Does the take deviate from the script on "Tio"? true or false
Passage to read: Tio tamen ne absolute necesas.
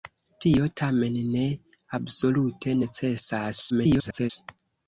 false